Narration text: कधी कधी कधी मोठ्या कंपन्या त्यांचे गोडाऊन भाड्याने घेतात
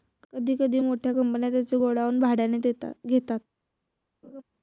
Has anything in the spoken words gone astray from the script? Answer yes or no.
yes